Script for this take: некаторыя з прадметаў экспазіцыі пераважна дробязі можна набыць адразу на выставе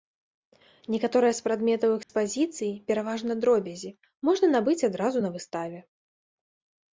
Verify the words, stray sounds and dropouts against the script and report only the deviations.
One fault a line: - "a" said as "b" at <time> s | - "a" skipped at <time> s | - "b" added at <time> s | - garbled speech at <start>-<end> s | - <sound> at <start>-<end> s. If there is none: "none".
- dropout at 2.0-2.1 s